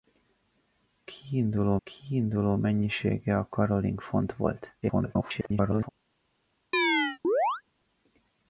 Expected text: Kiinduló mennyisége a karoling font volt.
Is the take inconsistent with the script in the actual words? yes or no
yes